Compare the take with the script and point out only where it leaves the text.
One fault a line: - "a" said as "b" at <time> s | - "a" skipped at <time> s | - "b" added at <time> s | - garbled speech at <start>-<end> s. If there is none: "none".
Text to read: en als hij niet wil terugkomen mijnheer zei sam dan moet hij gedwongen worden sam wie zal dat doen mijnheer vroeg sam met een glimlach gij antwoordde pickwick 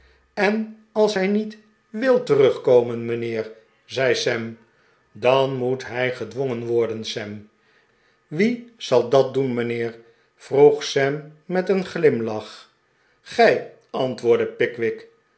none